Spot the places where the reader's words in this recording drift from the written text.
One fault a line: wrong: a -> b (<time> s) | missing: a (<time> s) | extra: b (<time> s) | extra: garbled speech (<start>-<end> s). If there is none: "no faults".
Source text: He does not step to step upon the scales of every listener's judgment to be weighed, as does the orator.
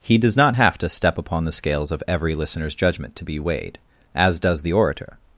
wrong: step -> have (0.5 s)